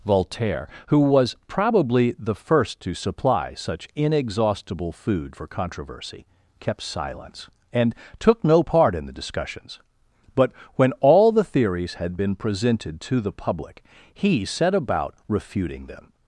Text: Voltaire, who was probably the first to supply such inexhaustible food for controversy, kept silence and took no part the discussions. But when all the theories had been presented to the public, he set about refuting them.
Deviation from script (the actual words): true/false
true